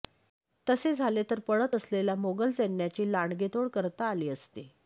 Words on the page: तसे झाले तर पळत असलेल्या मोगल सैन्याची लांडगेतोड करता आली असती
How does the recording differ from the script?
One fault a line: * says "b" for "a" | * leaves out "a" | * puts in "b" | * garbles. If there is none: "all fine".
all fine